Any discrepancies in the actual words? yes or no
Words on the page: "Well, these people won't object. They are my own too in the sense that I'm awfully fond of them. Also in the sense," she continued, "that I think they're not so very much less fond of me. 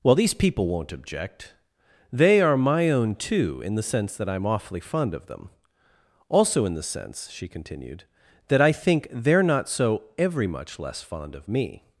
yes